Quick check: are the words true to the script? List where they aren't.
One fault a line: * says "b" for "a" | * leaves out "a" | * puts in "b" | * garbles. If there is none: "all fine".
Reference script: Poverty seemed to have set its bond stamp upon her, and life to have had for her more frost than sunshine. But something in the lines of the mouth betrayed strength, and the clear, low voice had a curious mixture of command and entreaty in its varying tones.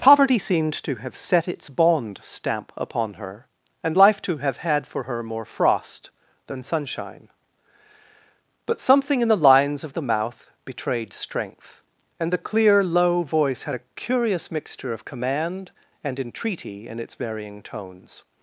all fine